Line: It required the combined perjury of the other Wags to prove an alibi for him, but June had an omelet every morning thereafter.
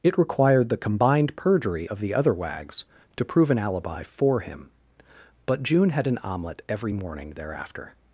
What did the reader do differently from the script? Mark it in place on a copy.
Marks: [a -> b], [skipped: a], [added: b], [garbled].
It required the combined perjury of the other Wags to prove an alibi for him, but June had an omelet every morning thereafter.